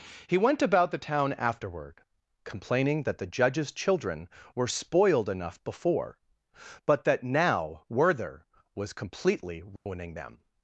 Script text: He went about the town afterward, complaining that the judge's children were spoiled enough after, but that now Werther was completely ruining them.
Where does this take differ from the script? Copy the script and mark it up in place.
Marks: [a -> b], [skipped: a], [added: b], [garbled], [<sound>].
He went about the town afterward, complaining that the judge's children were spoiled enough [after, -> before] but that now Werther was completely ruining [dropout] them.